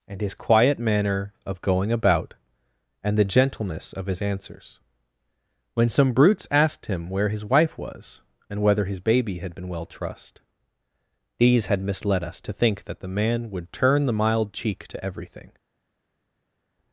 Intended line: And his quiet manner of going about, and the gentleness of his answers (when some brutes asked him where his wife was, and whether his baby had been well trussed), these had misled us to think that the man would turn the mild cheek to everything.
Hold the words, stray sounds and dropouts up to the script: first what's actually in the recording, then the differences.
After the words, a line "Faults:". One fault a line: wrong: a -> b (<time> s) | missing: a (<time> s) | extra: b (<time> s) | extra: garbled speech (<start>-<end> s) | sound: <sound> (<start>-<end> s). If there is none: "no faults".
And his quiet manner of going about, and the gentleness of his answers (when some brutes asked him where his wife was, and whether his baby had been well trussed), these had misled us to think that the man would turn the mild cheek to everything.
Faults:
no faults